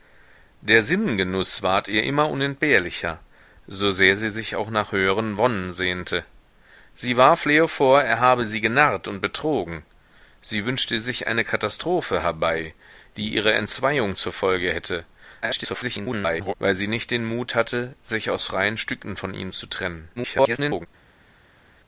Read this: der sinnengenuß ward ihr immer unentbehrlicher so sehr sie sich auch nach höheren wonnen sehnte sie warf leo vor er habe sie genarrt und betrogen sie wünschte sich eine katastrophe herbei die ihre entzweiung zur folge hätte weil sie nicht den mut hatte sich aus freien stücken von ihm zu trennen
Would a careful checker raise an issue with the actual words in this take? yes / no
yes